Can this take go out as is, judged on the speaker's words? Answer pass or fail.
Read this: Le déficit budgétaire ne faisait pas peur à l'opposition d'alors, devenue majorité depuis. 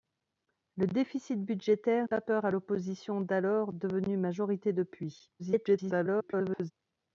fail